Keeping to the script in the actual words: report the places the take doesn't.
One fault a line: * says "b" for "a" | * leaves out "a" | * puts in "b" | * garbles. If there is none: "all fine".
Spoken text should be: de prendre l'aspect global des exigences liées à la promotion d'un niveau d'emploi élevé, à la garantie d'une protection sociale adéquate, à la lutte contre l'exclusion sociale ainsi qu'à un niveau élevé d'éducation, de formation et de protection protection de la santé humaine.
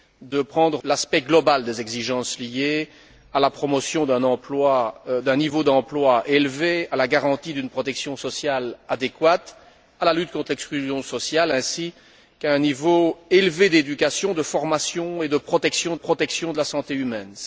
all fine